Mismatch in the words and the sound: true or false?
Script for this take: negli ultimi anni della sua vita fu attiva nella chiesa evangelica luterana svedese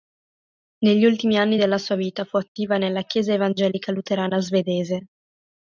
false